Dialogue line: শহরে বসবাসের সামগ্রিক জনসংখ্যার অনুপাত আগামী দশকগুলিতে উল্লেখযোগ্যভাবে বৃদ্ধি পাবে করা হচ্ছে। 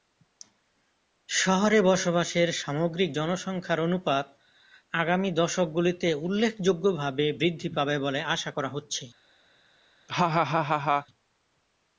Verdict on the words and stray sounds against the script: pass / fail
fail